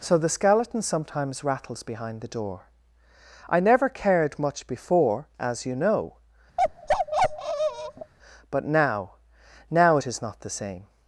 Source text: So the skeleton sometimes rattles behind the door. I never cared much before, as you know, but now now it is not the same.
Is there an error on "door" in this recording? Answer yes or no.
no